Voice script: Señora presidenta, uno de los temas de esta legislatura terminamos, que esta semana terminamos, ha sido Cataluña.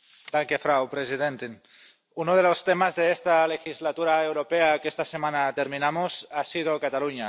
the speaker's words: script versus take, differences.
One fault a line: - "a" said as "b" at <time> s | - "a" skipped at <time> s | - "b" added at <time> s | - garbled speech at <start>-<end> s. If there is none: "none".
- "terminamos" said as "europea" at 4.2 s